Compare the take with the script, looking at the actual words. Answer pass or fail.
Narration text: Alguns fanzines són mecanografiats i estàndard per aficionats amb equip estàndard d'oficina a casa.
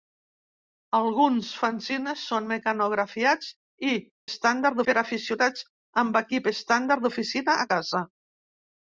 pass